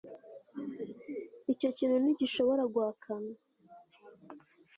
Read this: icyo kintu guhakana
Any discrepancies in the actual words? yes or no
yes